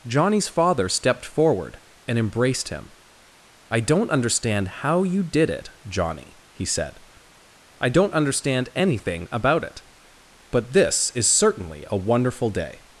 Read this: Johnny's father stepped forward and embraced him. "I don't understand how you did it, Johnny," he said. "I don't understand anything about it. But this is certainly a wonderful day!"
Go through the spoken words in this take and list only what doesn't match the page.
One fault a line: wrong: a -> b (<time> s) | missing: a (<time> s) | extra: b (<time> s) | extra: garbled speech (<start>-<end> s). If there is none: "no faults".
no faults